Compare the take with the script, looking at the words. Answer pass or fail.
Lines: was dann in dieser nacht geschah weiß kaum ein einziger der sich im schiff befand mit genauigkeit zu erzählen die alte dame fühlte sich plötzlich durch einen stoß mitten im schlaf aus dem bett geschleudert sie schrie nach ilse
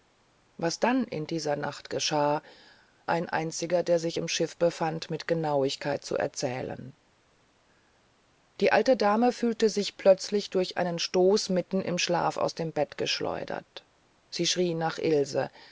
fail